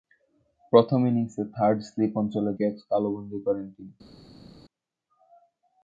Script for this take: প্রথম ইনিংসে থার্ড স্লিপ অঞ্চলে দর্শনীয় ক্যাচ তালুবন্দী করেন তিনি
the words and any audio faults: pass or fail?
fail